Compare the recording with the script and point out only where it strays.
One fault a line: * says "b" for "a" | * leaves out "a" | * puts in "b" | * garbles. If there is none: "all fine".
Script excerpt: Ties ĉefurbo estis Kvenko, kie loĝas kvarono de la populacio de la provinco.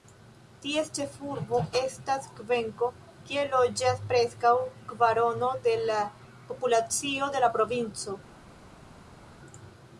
* says "estas" for "estis"
* puts in "preskaŭ"